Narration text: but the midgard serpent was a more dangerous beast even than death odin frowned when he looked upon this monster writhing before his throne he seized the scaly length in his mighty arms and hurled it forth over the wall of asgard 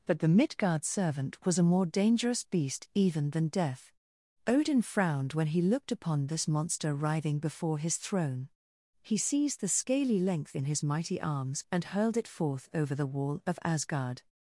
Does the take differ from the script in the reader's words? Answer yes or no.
yes